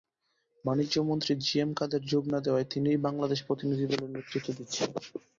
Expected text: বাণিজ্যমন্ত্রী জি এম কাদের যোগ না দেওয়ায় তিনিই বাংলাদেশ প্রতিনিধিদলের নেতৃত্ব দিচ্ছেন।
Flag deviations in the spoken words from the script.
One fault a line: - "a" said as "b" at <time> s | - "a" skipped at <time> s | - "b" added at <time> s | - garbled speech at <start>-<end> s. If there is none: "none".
none